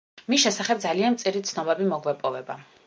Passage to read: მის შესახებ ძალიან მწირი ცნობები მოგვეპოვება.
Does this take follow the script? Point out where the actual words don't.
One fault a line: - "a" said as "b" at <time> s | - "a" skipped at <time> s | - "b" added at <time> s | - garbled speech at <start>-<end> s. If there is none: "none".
none